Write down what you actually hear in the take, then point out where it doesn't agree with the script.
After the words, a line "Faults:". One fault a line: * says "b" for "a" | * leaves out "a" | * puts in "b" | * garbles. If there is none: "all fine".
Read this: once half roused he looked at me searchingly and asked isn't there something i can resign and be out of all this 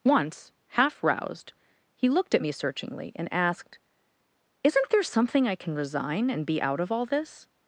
once half roused he looked at me searchingly and asked isn't there something i can resign and be out of all this
Faults:
all fine